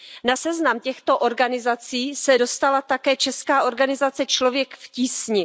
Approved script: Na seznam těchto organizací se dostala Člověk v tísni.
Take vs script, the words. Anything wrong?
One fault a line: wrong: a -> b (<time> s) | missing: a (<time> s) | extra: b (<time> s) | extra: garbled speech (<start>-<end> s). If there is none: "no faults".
extra: také česká organizace (2.8 s)